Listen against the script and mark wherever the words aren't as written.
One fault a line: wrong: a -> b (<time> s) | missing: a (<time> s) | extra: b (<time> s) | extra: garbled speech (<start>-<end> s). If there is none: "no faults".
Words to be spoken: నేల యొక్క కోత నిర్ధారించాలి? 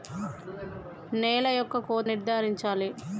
no faults